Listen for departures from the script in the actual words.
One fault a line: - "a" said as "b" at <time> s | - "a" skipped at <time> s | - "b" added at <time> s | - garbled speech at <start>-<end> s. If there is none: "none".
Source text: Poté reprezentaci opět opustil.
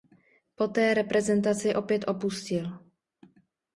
none